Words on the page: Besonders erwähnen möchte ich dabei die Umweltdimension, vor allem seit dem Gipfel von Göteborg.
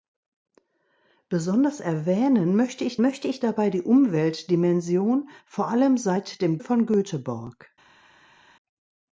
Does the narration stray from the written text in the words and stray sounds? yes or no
yes